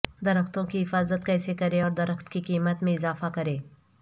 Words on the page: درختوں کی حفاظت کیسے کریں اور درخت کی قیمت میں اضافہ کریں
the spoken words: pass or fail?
pass